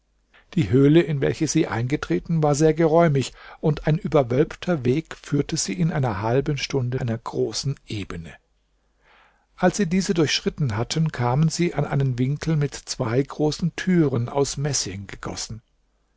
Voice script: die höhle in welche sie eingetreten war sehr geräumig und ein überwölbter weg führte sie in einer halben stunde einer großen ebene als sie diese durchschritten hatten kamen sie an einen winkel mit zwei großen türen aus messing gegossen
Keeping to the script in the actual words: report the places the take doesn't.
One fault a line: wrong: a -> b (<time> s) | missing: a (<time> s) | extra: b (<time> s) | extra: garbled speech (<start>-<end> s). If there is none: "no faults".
no faults